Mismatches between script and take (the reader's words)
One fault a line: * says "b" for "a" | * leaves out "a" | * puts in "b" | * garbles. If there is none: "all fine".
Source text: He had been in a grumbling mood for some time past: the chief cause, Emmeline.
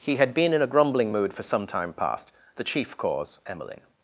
all fine